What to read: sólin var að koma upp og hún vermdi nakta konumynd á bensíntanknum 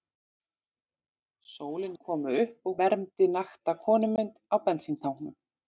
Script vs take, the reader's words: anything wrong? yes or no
yes